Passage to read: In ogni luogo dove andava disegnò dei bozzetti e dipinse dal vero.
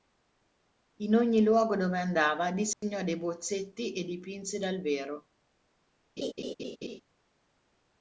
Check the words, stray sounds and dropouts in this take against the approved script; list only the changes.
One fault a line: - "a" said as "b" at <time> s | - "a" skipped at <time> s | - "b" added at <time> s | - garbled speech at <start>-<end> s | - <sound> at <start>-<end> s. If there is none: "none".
- dropout at 2.7-2.8 s
- laugh at 6.2-7.0 s